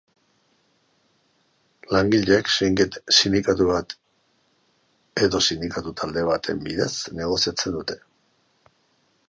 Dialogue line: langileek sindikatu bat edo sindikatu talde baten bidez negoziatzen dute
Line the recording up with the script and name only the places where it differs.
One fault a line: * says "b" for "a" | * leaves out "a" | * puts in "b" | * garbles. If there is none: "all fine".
all fine